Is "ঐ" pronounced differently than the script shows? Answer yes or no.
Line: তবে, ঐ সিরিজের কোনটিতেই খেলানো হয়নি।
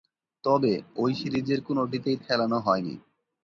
no